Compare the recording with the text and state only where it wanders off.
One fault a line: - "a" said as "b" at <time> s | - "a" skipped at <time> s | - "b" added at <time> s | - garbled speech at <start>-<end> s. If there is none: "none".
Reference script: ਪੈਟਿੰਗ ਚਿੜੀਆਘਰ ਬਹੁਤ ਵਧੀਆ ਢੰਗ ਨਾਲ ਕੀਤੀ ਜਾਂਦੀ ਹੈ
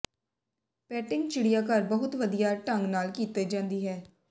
none